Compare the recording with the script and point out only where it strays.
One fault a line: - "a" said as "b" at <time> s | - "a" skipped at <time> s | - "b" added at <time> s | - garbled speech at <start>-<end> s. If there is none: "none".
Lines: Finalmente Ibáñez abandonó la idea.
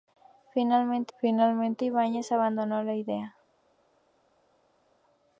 - "finalmente" added at 1.2 s